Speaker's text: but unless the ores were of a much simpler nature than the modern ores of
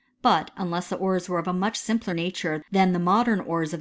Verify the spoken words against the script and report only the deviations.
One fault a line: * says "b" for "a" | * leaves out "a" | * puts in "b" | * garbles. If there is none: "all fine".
all fine